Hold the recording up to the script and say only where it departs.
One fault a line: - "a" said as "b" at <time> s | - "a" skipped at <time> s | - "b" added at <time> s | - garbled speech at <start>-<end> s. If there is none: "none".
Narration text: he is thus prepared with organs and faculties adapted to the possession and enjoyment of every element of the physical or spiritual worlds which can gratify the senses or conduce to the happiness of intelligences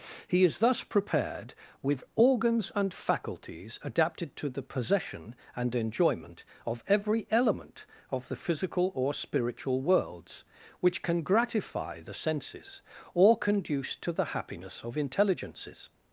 none